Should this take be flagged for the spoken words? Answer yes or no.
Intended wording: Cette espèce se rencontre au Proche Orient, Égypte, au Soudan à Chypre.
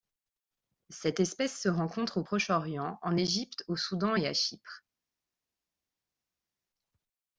yes